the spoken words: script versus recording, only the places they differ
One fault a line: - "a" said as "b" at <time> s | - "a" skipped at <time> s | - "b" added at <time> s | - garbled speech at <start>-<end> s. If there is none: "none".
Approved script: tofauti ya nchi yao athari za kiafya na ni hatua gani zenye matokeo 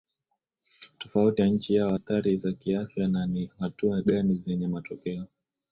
none